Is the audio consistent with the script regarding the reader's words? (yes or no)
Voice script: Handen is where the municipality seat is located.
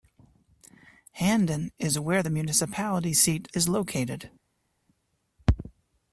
yes